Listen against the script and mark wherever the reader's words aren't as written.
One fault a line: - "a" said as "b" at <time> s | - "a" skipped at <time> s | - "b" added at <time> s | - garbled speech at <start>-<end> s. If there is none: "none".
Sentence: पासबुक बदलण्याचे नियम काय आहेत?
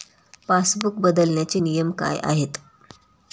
none